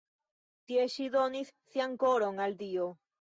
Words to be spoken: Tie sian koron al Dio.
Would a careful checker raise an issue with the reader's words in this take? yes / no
yes